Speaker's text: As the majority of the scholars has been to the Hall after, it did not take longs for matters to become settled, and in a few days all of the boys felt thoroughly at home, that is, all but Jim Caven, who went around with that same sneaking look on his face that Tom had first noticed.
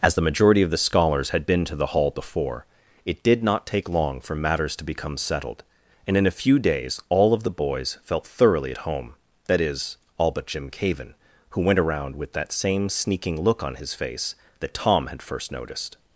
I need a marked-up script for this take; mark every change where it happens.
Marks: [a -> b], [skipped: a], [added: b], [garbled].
As the majority of the scholars [has -> had] been to the Hall [after, -> before] it did not take [longs -> long] for matters to become settled, and in a few days all of the boys felt thoroughly at home, that is, all but Jim Caven, who went around with that same sneaking look on his face that Tom had first noticed.